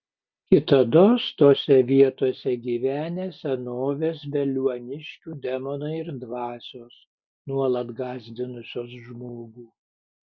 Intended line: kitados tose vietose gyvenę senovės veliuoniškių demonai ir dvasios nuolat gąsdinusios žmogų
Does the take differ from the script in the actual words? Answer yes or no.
no